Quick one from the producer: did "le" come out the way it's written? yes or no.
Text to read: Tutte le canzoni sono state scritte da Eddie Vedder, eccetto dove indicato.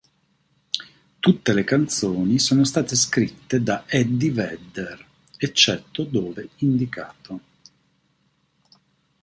yes